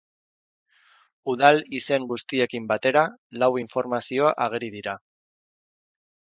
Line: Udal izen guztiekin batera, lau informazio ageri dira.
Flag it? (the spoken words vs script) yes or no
no